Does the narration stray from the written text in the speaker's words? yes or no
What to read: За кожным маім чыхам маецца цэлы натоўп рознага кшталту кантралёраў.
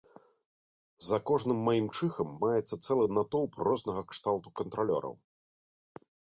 no